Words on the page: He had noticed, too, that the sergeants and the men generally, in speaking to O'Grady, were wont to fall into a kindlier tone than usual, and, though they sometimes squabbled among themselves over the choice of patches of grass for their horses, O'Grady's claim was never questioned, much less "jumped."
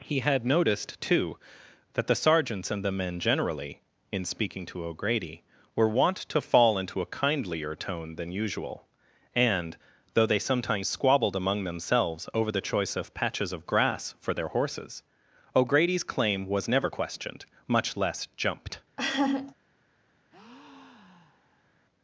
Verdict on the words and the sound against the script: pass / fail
fail